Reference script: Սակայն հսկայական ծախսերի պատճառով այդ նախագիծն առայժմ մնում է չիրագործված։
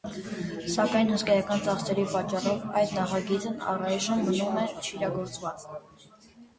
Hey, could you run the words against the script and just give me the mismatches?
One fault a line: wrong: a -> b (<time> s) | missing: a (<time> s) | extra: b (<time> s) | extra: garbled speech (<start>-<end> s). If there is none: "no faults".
no faults